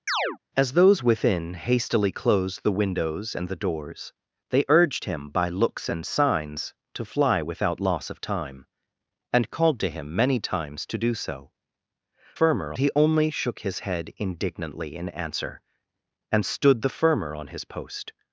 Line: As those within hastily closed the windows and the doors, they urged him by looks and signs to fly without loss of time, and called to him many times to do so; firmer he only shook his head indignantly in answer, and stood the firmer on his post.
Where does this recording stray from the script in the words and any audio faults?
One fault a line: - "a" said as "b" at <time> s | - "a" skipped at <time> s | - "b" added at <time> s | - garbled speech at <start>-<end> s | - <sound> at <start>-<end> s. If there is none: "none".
- chirp at 0.1-0.4 s